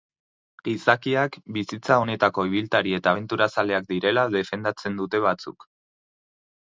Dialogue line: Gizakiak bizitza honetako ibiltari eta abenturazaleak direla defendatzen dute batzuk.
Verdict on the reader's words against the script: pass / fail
pass